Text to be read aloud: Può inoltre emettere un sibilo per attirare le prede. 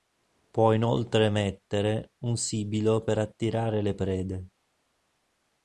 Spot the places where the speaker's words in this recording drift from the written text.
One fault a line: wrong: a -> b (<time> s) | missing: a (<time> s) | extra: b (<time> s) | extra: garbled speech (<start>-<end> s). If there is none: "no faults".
no faults